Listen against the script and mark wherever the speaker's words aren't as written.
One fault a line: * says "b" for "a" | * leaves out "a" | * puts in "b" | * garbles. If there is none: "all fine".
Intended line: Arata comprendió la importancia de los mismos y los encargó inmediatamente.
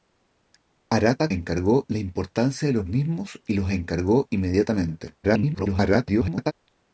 * says "encargó" for "comprendió"
* garbles